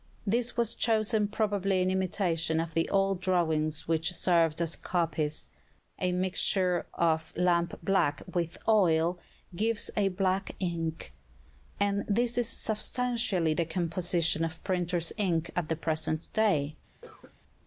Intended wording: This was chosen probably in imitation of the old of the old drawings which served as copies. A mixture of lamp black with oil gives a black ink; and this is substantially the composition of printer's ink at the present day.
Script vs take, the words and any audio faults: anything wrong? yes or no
yes